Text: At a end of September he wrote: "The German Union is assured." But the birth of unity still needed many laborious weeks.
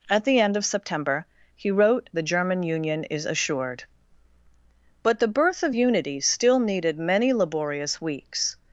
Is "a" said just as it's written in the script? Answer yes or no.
no